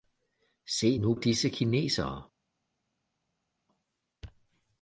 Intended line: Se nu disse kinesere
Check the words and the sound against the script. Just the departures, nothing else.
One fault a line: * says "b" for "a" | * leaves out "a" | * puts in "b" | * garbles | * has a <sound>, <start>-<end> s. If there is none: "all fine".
all fine